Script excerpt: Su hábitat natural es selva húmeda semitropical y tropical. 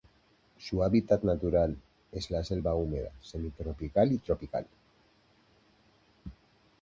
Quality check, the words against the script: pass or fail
fail